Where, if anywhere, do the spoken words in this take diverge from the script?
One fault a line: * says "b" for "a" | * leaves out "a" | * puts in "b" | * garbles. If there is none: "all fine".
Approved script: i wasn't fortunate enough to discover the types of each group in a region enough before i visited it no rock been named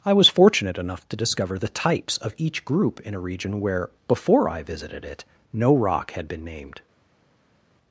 * says "was" for "wasn't"
* says "where" for "enough"
* puts in "had"